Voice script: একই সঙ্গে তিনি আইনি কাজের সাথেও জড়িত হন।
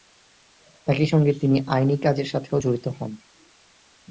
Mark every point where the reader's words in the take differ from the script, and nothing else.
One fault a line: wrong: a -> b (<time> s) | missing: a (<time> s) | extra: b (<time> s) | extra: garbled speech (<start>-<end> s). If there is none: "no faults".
no faults